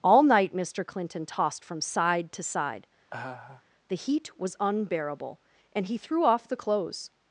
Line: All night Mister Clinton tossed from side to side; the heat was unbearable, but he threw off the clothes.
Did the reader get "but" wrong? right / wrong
wrong